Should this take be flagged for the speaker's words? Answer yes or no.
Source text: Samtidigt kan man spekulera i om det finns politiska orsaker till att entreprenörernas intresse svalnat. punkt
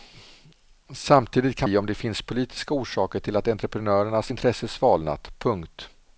yes